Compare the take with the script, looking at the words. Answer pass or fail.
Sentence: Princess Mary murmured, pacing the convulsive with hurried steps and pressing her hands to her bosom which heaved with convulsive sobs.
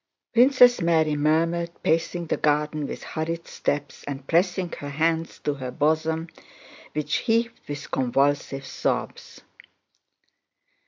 fail